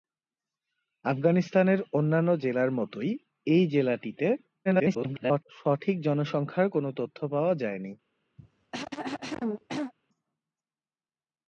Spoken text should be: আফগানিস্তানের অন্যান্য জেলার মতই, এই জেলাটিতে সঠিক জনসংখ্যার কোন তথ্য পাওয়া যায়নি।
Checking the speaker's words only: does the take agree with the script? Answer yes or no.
no